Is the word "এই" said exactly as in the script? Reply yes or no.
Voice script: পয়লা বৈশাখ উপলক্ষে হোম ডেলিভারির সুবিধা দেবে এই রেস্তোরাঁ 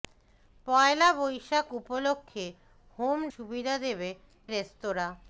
no